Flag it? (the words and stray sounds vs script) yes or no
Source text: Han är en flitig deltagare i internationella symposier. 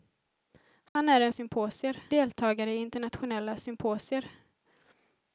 yes